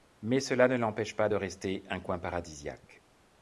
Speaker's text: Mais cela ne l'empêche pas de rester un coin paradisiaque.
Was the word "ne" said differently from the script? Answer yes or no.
no